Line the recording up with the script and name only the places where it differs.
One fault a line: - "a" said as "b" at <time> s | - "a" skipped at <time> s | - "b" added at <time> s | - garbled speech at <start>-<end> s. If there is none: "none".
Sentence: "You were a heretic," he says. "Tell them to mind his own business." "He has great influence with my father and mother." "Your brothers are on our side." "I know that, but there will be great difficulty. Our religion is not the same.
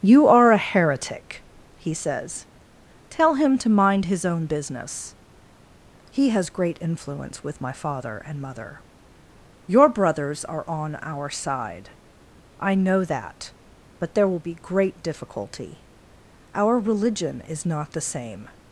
- "were" said as "are" at 0.2 s
- "them" said as "him" at 3.4 s